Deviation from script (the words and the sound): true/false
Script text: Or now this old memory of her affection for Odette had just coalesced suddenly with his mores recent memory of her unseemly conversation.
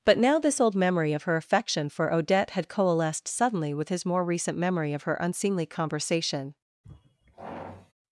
true